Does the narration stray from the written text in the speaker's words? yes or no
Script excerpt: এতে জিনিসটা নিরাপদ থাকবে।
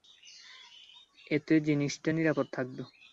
no